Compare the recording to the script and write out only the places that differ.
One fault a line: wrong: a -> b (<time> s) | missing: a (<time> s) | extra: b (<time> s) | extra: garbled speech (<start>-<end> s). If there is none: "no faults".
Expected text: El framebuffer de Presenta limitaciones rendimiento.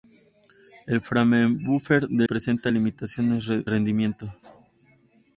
no faults